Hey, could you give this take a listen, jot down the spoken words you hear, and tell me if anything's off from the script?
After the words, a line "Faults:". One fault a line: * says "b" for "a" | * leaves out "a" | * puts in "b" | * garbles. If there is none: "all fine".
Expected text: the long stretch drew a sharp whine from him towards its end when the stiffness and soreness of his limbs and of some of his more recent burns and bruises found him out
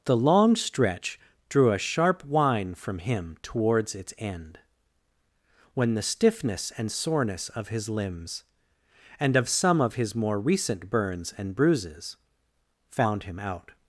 the long stretch drew a sharp whine from him towards its end when the stiffness and soreness of his limbs and of some of his more recent burns and bruises found him out
Faults:
all fine